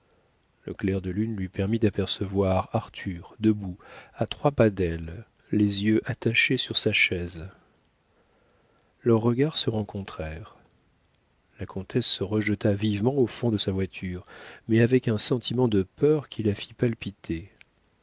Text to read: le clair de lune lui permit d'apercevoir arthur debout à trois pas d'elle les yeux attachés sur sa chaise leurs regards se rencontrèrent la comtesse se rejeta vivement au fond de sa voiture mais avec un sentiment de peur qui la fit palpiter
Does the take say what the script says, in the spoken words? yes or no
yes